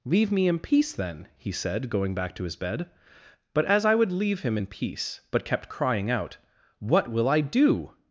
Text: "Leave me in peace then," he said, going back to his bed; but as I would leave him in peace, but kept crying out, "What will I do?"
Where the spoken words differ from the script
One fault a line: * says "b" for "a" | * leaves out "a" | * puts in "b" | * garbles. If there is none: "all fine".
all fine